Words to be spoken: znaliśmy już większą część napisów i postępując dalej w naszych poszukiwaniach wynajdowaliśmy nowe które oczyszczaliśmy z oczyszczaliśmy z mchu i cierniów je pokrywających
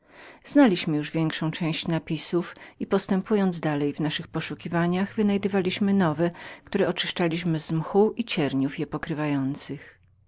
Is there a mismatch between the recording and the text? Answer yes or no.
yes